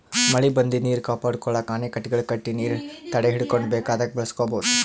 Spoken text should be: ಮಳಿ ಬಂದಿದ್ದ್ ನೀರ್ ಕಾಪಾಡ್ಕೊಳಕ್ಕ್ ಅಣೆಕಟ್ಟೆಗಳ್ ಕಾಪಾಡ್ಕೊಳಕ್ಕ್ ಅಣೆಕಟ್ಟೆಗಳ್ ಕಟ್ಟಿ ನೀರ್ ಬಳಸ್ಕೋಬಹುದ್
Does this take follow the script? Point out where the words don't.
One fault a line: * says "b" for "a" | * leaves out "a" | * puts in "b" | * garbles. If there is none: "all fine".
* says "ಕಟ್ಟಿ ನೀರ್ ತಡೆಹಿಡ್ಕೊಂಡ್ ಬೇಕಾದಾಗ್" for "ಕಾಪಾಡ್ಕೊಳಕ್ಕ್ ಅಣೆಕಟ್ಟೆಗಳ್ ಕಟ್ಟಿ ನೀರ್"